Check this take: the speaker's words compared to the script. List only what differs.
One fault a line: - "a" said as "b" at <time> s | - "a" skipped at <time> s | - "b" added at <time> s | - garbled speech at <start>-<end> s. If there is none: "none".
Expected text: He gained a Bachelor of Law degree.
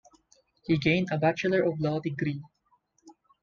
none